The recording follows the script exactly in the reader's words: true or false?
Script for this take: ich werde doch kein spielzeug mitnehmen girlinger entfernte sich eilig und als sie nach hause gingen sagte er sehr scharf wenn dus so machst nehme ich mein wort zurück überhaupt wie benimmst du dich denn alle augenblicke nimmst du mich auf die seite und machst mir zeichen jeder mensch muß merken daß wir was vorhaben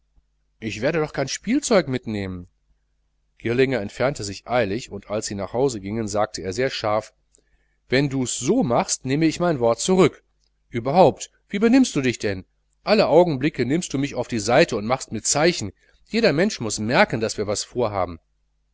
true